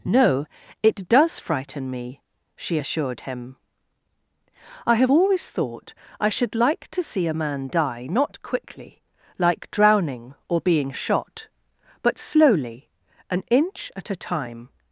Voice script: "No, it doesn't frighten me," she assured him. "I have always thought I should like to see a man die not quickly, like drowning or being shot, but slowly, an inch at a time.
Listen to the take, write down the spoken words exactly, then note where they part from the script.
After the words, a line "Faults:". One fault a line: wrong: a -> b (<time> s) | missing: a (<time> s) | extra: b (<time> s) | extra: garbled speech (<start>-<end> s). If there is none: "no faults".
"No, it does frighten me," she assured him. "I have always thought I should like to see a man die not quickly, like drowning or being shot, but slowly, an inch at a time.
Faults:
wrong: doesn't -> does (1.1 s)